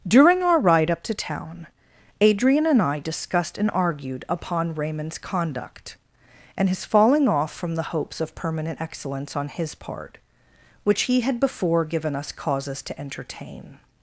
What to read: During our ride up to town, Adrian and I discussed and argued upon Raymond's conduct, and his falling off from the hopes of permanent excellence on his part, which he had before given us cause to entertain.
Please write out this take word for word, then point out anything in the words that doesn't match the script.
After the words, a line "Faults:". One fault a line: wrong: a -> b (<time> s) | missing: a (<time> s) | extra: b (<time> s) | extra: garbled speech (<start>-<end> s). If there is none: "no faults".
During our ride up to town, Adrian and I discussed and argued upon Raymond's conduct, and his falling off from the hopes of permanent excellence on his part, which he had before given us causes to entertain.
Faults:
wrong: cause -> causes (12.3 s)